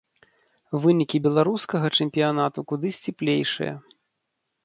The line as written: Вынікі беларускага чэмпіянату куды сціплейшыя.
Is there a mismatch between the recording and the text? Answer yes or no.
no